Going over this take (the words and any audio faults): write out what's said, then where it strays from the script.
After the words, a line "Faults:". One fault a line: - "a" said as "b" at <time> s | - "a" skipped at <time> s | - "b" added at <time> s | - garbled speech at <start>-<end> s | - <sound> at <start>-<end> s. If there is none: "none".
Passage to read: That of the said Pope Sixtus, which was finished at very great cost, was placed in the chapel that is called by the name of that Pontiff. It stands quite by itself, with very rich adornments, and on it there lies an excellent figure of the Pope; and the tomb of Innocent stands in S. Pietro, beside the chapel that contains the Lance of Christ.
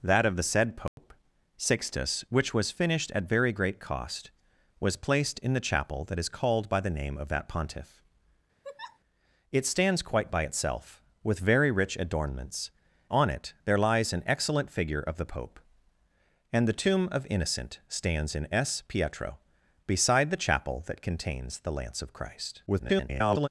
That of the said Pope Sixtus, which was finished at very great cost, was placed in the chapel that is called by the name of that Pontiff. It stands quite by itself, with very rich adornments, on it there lies an excellent figure of the Pope; and the tomb of Innocent stands in S. Pietro, beside the chapel that contains the Lance of Christ. [garbled]
Faults:
- dropout at 0.9-1.0 s
- laugh at 8.6-9.0 s
- "and" skipped at 12.7 s
- garbled speech at 22.7-23.5 s